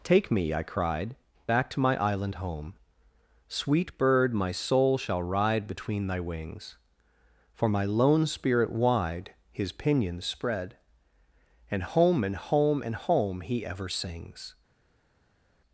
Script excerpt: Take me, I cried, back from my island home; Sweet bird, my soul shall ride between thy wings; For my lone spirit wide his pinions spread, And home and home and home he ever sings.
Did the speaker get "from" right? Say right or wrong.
wrong